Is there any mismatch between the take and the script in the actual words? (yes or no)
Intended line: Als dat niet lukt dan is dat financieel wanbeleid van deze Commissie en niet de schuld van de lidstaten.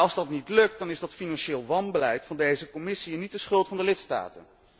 no